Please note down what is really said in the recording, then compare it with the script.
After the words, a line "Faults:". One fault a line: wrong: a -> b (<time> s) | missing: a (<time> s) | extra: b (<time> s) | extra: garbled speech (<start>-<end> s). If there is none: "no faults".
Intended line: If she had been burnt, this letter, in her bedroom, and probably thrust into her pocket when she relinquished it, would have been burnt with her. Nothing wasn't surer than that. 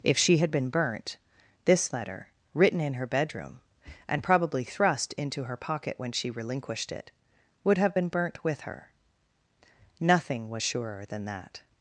If she had been burnt, this letter, written in her bedroom, and probably thrust into her pocket when she relinquished it, would have been burnt with her. Nothing was surer than that.
Faults:
extra: written (2.5 s)
wrong: wasn't -> was (10.5 s)